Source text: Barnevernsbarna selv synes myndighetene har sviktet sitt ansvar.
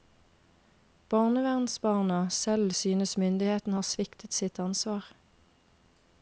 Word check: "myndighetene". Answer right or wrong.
right